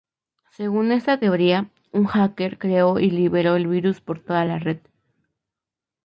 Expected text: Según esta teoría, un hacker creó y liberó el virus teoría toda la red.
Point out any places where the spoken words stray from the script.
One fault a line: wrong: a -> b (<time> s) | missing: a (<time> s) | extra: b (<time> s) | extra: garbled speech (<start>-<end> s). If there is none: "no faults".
wrong: teoría -> por (4.0 s)